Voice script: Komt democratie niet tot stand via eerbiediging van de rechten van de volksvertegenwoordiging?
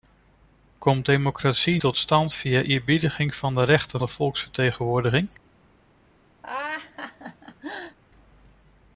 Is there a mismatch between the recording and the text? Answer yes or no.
yes